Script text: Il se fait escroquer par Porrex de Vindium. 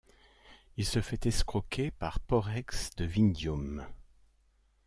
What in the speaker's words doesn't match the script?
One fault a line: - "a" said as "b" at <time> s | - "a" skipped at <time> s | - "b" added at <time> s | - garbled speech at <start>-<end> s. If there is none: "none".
none